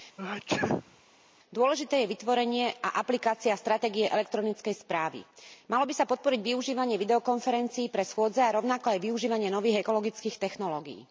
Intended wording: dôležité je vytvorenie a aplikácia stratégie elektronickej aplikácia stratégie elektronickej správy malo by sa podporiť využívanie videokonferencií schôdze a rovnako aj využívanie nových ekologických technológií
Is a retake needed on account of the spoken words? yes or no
yes